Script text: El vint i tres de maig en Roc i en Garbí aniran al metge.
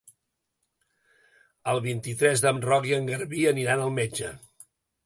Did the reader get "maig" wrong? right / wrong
wrong